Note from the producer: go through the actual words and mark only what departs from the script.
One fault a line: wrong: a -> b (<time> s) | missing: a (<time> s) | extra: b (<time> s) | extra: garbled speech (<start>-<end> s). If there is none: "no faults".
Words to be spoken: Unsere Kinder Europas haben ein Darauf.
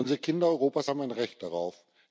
extra: Recht (1.1 s)